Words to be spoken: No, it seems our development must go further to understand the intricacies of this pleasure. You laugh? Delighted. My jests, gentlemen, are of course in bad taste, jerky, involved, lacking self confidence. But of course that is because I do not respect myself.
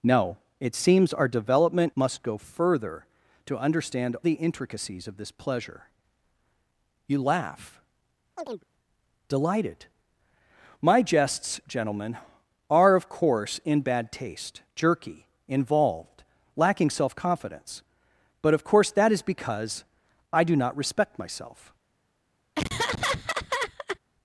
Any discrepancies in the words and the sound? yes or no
yes